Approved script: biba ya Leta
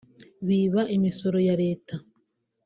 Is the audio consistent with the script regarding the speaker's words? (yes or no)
no